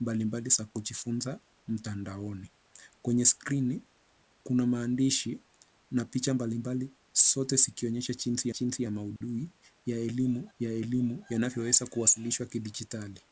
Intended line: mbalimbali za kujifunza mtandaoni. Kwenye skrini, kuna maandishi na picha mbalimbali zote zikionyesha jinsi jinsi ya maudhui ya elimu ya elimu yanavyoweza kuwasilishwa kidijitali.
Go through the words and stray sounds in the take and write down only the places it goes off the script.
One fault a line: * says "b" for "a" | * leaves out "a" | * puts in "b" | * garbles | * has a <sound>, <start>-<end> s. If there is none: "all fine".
* has a dropout, 9.2-9.2 s